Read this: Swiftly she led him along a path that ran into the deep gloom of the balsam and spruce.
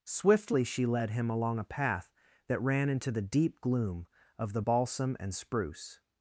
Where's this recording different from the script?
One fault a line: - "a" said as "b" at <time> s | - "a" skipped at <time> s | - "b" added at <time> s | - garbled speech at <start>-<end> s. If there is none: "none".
none